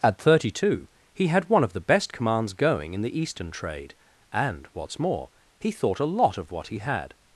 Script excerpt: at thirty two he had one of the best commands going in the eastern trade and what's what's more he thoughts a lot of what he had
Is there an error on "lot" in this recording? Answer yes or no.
no